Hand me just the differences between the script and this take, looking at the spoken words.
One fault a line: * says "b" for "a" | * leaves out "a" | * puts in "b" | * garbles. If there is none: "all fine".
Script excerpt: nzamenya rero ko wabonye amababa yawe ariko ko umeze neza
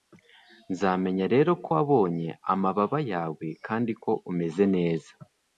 * says "kandi" for "ariko"